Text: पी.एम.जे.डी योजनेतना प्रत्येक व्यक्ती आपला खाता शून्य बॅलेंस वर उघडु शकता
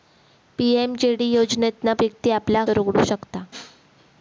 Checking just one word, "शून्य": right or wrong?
wrong